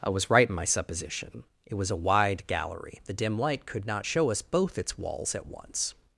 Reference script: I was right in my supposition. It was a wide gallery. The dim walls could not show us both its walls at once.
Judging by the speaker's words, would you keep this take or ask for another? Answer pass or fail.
fail